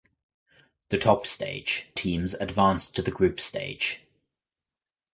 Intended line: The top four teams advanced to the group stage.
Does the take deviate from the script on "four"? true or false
true